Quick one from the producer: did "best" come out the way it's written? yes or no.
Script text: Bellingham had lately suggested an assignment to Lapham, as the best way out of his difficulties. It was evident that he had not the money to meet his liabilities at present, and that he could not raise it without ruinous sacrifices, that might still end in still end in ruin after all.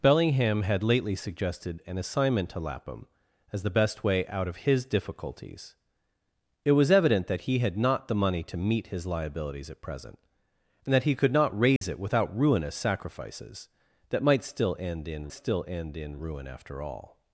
yes